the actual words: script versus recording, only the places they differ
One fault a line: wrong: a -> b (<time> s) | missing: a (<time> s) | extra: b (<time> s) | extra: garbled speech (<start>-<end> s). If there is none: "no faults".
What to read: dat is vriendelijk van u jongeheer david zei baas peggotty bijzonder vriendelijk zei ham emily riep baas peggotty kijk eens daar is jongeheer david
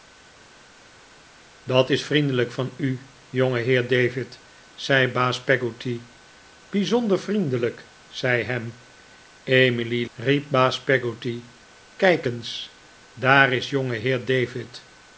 no faults